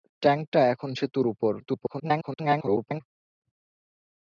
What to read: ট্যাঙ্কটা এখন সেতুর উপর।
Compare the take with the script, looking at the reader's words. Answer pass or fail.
fail